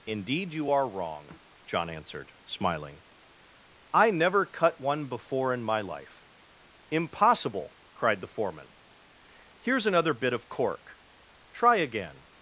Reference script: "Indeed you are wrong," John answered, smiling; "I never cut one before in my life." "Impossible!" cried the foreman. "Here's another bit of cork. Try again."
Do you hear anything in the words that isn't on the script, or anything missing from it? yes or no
no